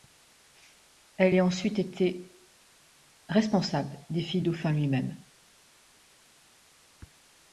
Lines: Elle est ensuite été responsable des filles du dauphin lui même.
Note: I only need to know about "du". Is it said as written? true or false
false